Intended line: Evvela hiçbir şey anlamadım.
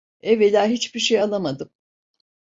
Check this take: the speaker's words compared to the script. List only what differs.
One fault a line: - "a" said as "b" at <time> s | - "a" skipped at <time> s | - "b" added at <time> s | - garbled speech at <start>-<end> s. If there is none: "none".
none